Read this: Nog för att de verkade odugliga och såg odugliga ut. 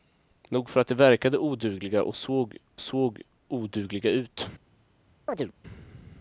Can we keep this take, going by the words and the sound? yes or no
no